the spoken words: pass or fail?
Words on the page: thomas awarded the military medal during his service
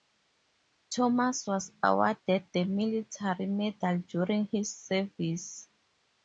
fail